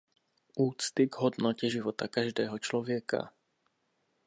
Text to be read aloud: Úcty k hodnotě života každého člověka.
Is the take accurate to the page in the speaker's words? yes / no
yes